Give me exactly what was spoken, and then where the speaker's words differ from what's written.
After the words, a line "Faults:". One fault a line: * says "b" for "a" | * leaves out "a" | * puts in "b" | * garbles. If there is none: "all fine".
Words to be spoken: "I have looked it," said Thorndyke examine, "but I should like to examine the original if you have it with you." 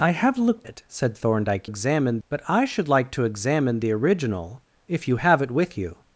"I have looked it," said Thorndyke examine, "but I should like to examine the original if you have it with you."
Faults:
all fine